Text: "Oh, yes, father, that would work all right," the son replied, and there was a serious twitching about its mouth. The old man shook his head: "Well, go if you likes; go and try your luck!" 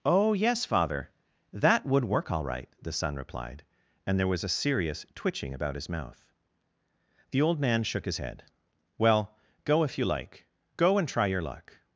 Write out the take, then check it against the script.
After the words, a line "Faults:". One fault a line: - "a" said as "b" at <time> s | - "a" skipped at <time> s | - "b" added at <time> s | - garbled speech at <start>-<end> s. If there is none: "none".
"Oh, yes, father, that would work all right," the son replied, and there was a serious twitching about his mouth. The old man shook his head: "Well, go if you like; go and try your luck!"
Faults:
- "its" said as "his" at 5.8 s
- "likes" said as "like" at 10.0 s